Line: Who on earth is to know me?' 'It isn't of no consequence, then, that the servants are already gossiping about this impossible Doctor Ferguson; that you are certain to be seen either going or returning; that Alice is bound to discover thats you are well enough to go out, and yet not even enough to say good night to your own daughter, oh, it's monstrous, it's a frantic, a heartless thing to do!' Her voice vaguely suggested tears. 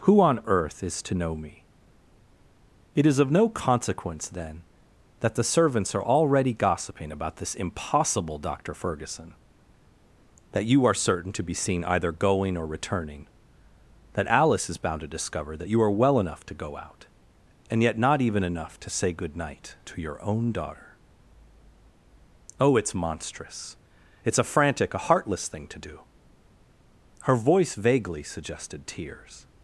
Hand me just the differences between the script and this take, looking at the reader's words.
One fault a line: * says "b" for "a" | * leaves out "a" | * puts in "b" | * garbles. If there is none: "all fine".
* says "is" for "isn't"
* says "that" for "thats"